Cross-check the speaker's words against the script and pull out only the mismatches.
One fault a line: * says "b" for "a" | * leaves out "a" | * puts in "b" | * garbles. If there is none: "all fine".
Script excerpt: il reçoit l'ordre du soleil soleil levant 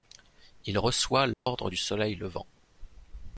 * leaves out "soleil"